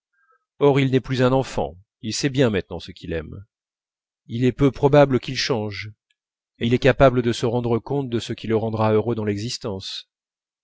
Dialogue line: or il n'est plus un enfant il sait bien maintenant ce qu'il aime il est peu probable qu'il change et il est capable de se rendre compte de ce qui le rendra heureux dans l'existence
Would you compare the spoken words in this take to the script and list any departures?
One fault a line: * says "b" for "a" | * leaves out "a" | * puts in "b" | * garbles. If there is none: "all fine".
all fine